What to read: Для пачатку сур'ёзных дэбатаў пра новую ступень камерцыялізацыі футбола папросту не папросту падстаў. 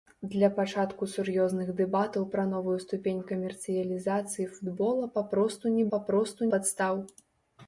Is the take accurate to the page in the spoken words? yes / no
yes